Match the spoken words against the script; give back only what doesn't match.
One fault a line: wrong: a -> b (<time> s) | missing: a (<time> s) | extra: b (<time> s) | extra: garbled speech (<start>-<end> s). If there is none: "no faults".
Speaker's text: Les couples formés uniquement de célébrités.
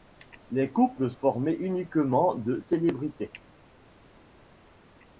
no faults